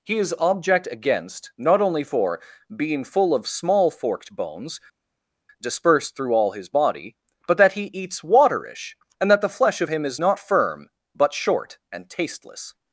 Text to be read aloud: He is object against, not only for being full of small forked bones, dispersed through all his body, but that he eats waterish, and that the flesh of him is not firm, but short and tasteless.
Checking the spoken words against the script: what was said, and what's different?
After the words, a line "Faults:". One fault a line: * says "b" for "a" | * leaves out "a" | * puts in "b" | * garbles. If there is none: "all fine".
He is object against, not only for being full of small forked bones, dispersed through all his body, but that he eats waterish, and that the flesh of him is not firm, but short and tasteless.
Faults:
all fine